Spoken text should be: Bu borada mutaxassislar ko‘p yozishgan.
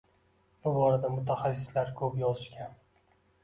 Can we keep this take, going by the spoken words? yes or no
yes